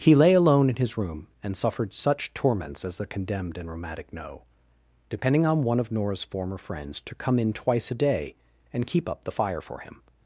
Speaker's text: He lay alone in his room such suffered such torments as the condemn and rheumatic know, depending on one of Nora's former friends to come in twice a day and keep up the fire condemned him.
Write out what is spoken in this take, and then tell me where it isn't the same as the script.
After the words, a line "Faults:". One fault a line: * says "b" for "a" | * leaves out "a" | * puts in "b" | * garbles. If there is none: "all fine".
He lay alone in his room and suffered such torments as the condemned and rheumatic know, depending on one of Nora's former friends to come in twice a day and keep up the fire for him.
Faults:
* says "and" for "such"
* says "condemned" for "condemn"
* says "for" for "condemned"